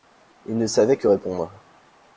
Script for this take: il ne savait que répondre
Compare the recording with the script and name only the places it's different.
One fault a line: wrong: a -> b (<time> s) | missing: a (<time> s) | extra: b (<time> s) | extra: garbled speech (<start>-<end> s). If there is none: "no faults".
no faults